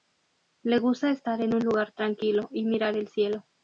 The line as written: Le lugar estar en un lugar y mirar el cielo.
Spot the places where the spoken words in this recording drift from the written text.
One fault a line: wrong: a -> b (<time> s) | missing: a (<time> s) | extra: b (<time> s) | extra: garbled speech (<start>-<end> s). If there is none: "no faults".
wrong: lugar -> gusta (0.8 s)
extra: tranquilo (1.9 s)